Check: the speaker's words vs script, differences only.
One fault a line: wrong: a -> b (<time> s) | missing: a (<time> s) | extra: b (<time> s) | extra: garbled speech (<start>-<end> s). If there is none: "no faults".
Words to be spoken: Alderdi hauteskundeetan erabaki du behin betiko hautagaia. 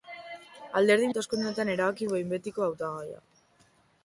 no faults